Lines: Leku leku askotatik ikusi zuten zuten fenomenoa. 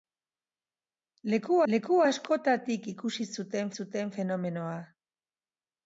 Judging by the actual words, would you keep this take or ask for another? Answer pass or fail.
pass